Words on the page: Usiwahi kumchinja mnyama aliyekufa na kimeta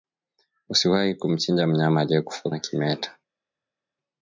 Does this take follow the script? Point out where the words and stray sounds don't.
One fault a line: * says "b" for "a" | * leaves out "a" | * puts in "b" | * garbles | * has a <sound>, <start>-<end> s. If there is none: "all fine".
all fine